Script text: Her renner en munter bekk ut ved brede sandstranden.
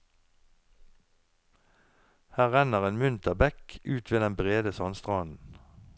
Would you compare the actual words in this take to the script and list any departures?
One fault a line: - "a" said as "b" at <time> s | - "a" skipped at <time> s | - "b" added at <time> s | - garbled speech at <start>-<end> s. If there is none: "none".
- "den" added at 4.2 s